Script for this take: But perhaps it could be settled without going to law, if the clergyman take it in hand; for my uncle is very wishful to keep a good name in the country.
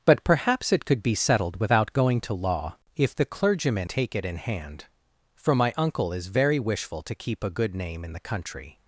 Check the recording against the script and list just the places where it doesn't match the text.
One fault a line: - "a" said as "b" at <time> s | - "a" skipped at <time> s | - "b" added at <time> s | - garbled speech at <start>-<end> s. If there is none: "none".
none